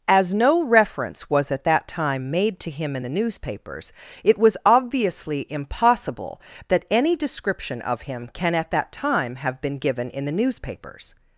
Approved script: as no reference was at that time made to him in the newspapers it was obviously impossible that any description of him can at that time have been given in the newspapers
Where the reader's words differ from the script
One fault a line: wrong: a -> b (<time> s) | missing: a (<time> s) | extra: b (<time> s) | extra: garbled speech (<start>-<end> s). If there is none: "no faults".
no faults